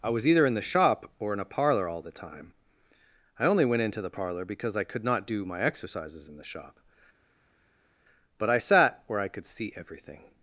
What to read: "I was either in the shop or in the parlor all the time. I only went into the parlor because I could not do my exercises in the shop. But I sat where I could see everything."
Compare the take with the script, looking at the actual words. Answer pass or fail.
fail